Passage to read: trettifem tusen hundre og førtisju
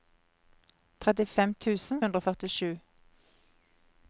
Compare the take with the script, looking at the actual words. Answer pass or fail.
pass